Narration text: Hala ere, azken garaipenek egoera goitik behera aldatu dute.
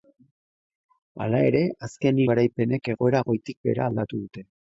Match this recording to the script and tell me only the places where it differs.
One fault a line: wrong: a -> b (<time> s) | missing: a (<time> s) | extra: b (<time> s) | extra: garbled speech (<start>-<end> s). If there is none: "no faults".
no faults